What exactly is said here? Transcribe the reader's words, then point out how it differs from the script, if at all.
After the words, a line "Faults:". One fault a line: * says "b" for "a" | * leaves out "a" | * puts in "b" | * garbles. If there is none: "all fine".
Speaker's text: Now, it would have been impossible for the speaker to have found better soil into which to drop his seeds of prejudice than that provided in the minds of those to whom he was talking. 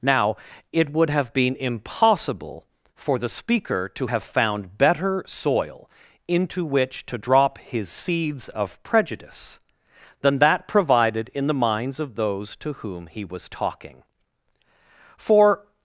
Now, it would have been impossible for the speaker to have found better soil into which to drop his seeds of prejudice than that provided in the minds of those to whom he was talking. For
Faults:
* puts in "For"